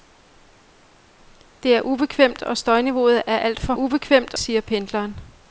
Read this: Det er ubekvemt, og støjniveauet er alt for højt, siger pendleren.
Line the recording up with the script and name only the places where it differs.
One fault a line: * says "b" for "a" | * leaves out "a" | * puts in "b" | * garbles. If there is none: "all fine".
* says "ubekvemt" for "højt"